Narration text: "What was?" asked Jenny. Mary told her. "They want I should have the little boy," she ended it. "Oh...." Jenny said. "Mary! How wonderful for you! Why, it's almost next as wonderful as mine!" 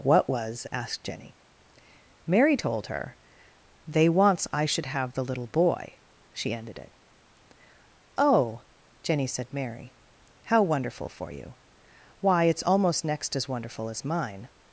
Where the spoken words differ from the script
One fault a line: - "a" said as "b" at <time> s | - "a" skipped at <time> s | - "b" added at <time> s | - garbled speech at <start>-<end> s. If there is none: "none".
- "want" said as "wants" at 4.1 s